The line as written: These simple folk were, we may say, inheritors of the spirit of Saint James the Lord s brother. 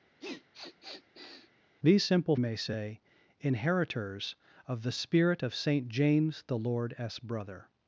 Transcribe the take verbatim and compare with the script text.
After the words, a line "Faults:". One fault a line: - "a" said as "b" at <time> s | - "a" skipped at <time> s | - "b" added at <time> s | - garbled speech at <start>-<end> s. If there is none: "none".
These simple may say, inheritors of the spirit of Saint James the Lord s brother.
Faults:
- "folk were we" skipped at 2.4 s